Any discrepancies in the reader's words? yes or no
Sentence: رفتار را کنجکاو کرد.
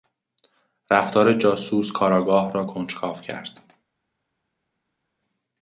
yes